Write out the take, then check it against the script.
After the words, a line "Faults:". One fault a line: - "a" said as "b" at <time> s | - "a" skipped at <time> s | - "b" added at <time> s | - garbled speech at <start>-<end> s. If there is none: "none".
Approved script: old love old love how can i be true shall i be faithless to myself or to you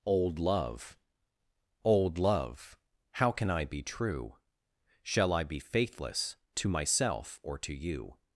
old love old love how can i be true shall i be faithless to myself or to you
Faults:
none